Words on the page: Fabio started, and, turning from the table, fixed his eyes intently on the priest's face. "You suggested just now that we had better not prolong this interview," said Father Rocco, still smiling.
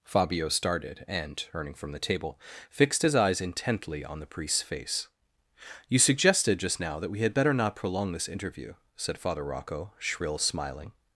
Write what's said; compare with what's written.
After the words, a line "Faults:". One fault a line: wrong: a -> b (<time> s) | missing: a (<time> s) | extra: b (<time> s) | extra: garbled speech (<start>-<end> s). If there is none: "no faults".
Fabio started, and, turning from the table, fixed his eyes intently on the priest's face. "You suggested just now that we had better not prolong this interview," said Father Rocco, shrill smiling.
Faults:
wrong: still -> shrill (10.0 s)